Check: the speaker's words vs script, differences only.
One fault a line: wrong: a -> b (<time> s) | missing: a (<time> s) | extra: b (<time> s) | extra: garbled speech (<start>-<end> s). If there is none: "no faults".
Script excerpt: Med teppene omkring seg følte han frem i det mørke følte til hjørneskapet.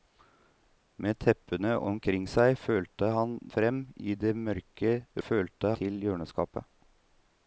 no faults